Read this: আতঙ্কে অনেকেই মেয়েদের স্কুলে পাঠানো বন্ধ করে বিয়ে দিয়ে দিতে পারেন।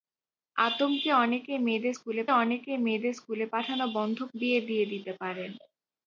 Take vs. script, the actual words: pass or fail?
fail